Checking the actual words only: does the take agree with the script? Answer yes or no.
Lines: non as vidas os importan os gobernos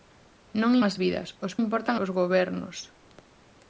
yes